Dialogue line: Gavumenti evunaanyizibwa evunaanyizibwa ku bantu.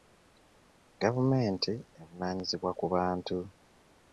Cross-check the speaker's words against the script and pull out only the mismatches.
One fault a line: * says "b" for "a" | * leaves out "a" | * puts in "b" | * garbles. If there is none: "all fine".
* leaves out "evunaanyizibwa"